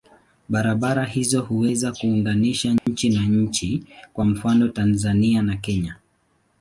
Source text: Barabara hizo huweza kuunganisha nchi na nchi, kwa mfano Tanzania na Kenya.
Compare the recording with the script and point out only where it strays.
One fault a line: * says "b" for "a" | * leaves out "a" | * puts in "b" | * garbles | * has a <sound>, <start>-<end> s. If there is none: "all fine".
* has a dropout, 2.8-2.9 s